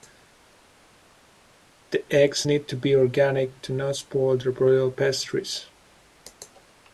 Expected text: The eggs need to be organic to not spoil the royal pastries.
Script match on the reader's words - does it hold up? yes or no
yes